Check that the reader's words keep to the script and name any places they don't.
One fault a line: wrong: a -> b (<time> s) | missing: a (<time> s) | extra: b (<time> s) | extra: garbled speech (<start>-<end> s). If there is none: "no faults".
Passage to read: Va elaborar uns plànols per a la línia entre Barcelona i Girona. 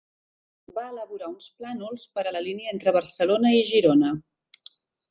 no faults